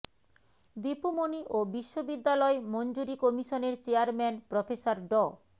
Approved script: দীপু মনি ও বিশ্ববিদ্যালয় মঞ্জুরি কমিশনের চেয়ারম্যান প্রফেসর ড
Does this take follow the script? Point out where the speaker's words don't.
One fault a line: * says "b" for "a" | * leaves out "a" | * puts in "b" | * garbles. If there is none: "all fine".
all fine